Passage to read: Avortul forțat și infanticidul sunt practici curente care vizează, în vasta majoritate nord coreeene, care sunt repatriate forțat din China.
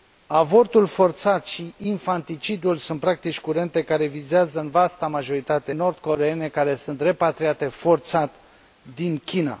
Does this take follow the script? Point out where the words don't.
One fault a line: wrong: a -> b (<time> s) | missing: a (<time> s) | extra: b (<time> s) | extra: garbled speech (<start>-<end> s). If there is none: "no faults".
no faults